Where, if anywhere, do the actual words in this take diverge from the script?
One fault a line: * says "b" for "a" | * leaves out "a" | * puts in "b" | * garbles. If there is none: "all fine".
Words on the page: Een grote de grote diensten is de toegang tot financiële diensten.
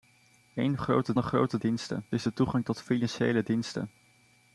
all fine